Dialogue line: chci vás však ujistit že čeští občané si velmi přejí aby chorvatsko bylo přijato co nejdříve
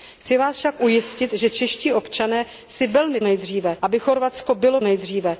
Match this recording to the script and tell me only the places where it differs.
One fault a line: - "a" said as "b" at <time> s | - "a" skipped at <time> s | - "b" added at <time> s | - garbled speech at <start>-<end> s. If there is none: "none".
- "přejí" said as "nejdříve" at 3.2 s
- "přijato co" skipped at 4.8 s